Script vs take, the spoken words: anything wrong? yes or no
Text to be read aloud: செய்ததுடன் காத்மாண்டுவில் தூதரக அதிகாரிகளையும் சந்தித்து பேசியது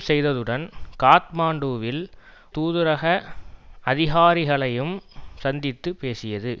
no